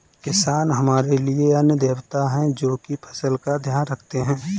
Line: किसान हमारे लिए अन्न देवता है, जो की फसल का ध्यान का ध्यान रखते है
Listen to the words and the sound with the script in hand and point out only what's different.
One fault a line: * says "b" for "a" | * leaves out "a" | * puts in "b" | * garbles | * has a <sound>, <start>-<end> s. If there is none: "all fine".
* leaves out "का ध्यान"